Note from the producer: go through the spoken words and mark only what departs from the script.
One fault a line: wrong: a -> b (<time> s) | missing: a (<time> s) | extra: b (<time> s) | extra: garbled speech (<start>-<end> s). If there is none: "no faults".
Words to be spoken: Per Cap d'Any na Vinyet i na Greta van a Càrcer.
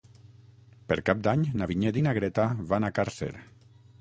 no faults